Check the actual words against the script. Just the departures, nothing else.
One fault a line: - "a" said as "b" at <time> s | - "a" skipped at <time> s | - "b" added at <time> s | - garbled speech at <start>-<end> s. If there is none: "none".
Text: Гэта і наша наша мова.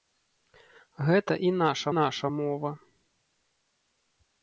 none